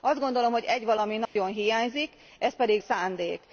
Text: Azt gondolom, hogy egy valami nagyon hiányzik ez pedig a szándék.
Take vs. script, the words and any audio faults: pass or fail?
fail